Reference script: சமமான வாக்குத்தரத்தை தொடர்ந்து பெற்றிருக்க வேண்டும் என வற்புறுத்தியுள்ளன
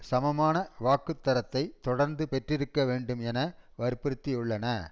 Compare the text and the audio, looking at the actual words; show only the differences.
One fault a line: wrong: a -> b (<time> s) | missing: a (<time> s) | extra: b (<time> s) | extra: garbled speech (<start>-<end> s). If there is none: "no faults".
no faults